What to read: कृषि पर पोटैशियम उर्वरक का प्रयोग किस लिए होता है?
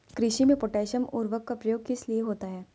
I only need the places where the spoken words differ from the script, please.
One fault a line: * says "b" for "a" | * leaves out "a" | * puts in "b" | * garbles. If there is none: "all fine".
* says "में" for "पर"